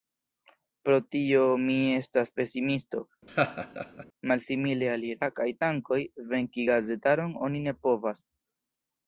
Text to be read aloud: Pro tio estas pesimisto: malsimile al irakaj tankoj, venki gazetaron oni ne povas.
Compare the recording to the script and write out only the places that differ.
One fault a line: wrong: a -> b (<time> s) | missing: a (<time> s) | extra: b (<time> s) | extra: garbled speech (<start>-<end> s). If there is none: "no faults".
extra: mi (1.6 s)